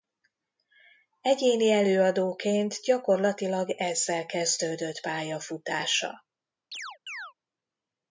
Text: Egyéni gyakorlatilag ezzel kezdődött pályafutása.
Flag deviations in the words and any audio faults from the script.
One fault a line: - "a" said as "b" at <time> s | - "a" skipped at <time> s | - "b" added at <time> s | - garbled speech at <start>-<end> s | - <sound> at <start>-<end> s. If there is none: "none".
- "előadóként" added at 1.7 s
- chirp at 6.7-7.3 s